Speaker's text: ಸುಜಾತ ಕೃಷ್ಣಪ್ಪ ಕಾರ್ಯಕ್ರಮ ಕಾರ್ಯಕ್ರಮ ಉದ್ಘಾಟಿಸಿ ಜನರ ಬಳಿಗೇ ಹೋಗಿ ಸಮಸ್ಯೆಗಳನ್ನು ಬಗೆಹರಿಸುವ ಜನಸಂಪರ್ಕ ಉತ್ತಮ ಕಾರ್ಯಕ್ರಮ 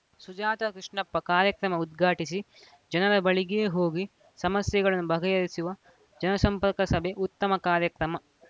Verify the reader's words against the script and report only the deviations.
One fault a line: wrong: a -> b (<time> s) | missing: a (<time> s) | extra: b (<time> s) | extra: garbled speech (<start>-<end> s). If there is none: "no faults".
missing: ಕಾರ್ಯಕ್ರಮ (1.8 s)
extra: ಸಭೆ (6.9 s)